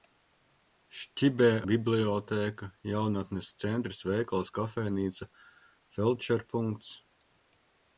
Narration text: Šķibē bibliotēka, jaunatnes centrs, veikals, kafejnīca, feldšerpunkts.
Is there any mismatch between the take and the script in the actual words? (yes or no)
no